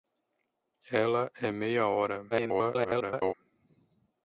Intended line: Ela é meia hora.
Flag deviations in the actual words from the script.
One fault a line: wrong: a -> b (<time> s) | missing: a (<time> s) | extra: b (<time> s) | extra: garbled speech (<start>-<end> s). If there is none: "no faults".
extra: garbled speech (2.3-3.3 s)